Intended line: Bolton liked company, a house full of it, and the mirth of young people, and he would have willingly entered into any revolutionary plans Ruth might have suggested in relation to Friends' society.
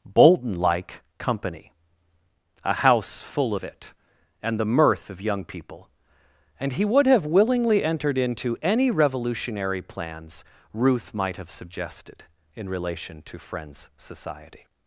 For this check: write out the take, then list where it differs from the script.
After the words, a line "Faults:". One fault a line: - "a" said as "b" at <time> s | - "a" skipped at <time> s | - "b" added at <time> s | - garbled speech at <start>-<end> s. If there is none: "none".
Bolton like company, a house full of it, and the mirth of young people, and he would have willingly entered into any revolutionary plans Ruth might have suggested in relation to Friends' society.
Faults:
- "liked" said as "like" at 0.6 s